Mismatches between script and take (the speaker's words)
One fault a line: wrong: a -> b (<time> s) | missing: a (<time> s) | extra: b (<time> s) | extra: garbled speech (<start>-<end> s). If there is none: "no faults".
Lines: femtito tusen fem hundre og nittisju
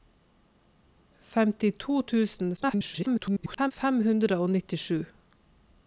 extra: garbled speech (2.6-3.7 s)